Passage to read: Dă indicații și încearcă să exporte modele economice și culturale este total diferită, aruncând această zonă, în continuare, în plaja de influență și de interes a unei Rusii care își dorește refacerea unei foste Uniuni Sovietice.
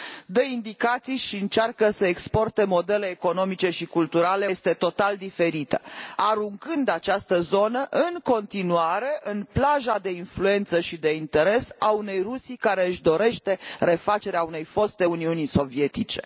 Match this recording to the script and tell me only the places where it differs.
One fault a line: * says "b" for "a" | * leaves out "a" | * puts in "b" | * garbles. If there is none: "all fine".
all fine